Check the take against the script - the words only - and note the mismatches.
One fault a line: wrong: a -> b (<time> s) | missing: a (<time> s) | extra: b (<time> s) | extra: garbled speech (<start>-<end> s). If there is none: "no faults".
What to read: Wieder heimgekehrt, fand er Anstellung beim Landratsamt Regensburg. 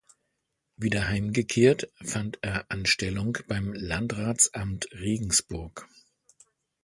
no faults